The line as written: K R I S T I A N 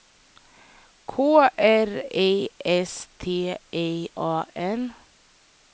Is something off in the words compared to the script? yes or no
no